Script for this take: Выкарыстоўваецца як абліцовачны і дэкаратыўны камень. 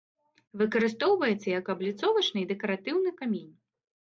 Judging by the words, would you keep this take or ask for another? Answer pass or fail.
pass